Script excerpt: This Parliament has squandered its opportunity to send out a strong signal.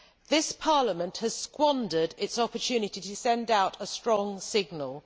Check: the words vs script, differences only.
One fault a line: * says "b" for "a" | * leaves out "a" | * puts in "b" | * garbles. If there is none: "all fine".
all fine